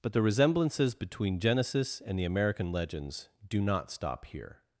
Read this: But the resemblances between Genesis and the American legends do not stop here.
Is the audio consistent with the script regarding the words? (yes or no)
yes